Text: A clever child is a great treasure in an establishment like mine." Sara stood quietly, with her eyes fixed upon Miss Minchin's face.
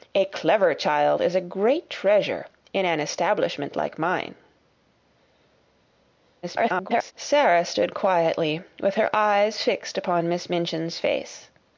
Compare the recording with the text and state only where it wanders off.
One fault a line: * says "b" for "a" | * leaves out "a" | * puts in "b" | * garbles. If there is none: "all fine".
* garbles